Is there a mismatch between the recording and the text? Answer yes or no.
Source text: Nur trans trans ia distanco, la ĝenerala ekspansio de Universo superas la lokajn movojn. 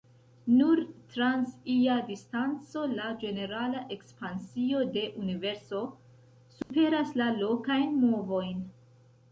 yes